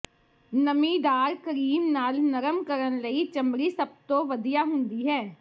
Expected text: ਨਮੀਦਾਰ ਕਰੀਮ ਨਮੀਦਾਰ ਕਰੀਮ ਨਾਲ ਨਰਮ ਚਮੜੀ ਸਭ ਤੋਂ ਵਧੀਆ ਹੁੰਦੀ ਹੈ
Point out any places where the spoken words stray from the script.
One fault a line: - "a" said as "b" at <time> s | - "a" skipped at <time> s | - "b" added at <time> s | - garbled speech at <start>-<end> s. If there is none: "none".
- "ਨਮੀਦਾਰ ਕਰੀਮ ਨਾਲ ਨਰਮ" said as "ਨਾਲ ਨਰਮ ਕਰਨ ਲਈ" at 1.9 s